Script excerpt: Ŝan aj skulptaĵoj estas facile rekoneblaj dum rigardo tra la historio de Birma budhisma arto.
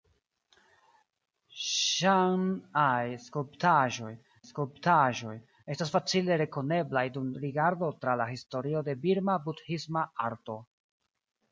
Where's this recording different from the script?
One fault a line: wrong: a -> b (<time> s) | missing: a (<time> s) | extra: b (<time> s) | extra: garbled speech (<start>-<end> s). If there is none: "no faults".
extra: skulptaĵoj (4.5 s)